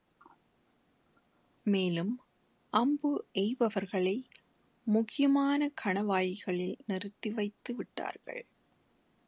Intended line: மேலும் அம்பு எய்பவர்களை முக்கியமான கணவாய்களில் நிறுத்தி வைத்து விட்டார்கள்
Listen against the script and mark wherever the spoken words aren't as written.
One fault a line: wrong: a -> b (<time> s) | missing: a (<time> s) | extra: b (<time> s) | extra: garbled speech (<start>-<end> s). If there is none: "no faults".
no faults